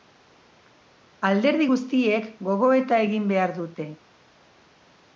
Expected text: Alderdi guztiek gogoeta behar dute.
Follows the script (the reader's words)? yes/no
no